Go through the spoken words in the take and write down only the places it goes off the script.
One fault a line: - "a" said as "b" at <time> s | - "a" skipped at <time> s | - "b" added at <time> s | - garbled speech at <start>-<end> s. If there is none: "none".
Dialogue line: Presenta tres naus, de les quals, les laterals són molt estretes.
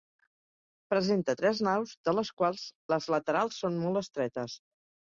none